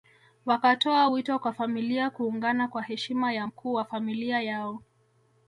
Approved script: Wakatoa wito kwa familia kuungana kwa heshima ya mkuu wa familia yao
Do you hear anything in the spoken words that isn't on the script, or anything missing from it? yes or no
no